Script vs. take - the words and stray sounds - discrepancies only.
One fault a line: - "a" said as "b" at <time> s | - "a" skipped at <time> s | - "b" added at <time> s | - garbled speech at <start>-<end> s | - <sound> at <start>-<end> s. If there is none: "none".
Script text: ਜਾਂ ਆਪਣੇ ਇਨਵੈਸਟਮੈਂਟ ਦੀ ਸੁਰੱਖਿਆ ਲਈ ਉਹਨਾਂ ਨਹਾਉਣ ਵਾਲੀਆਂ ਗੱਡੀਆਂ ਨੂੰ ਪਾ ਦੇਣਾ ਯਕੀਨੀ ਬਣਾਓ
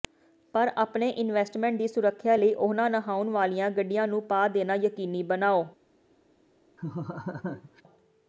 - "ਜਾਂ" said as "ਪਰ" at 0.5 s
- laugh at 6.8-7.8 s